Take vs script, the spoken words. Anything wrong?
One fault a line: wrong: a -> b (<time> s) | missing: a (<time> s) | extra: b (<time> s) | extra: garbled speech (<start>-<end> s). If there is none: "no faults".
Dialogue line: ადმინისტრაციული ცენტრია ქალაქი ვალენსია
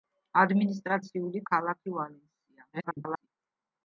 missing: ცენტრია (1.4 s)
extra: garbled speech (2.7-3.3 s)